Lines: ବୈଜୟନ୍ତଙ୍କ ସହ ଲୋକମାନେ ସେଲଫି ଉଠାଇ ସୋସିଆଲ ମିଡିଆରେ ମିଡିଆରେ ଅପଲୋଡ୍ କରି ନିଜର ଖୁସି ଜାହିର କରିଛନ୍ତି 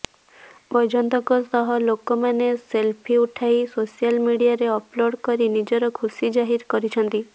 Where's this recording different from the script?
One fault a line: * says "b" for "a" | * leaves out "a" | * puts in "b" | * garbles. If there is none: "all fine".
* leaves out "ମିଡିଆରେ"